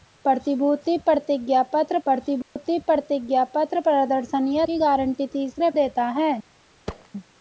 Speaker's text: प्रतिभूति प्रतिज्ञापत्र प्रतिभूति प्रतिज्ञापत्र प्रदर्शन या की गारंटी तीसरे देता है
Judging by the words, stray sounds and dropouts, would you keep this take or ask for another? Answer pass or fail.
fail